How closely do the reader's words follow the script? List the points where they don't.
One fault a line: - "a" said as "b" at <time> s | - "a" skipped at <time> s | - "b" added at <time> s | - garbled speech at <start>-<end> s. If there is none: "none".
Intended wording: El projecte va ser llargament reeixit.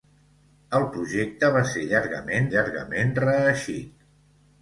- "llargament" added at 2.5 s